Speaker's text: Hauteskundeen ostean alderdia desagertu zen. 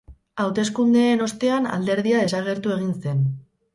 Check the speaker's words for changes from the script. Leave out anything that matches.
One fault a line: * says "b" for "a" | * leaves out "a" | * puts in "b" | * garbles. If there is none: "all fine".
* puts in "egin"